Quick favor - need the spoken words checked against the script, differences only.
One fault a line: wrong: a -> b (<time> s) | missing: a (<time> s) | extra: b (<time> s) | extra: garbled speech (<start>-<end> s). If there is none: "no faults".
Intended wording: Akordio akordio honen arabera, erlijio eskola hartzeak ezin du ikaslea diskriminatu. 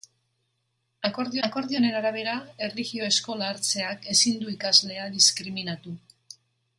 no faults